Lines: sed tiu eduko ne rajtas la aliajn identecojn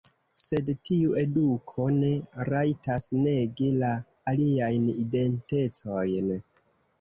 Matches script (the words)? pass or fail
fail